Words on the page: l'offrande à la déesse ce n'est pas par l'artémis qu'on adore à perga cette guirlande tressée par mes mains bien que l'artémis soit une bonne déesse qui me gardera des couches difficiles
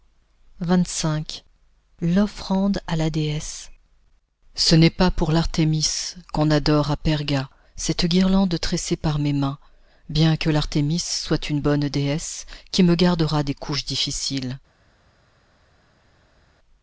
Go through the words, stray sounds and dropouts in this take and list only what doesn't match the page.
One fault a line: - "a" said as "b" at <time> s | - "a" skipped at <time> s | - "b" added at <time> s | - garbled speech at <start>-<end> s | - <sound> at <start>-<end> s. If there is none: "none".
- "par" said as "pour" at 5.1 s